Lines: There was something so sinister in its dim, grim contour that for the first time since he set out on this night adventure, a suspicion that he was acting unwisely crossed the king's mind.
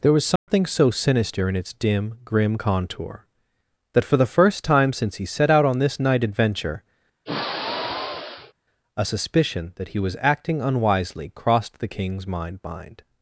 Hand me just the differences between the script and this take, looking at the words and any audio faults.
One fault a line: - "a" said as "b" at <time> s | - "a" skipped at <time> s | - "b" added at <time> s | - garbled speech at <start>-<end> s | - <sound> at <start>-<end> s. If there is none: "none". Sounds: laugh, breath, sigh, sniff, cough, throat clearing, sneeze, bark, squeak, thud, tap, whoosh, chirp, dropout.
- dropout at 0.4-0.5 s
- sigh at 7.3-8.5 s
- "mind" added at 12.6 s